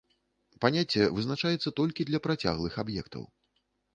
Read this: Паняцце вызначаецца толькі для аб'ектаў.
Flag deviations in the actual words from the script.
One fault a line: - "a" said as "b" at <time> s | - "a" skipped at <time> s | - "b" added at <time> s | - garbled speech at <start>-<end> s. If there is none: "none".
- "працяглых" added at 2.2 s